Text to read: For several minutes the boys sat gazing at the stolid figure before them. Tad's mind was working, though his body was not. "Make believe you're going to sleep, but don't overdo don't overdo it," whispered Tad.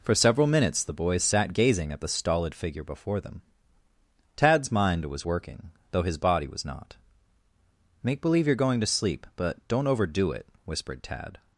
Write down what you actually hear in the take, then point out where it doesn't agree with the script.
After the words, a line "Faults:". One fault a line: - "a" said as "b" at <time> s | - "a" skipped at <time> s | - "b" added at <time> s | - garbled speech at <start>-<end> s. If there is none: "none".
For several minutes the boys sat gazing at the stolid figure before them. Tad's mind was working, though his body was not. "Make believe you're going to sleep, but don't overdo it," whispered Tad.
Faults:
- "don't overdo" skipped at 10.3 s